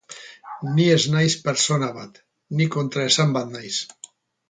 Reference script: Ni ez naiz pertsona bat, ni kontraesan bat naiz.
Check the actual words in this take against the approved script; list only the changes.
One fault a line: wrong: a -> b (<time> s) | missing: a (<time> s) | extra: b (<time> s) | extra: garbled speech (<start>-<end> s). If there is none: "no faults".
no faults